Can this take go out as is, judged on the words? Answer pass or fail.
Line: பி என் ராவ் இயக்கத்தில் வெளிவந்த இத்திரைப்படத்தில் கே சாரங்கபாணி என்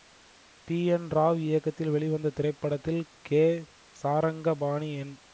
pass